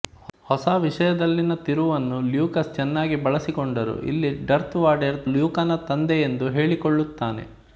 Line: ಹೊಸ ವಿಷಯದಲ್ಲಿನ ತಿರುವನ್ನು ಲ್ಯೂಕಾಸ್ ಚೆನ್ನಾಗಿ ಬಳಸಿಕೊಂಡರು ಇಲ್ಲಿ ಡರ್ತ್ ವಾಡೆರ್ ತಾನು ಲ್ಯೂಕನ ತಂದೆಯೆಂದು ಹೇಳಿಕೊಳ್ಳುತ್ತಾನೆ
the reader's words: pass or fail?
fail